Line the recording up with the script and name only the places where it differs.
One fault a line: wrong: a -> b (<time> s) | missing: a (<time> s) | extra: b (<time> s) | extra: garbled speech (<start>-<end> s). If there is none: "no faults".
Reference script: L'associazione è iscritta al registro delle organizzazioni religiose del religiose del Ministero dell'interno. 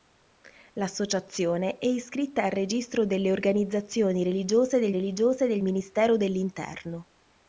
no faults